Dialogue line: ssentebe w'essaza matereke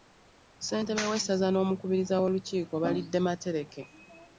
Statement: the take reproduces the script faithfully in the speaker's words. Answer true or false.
false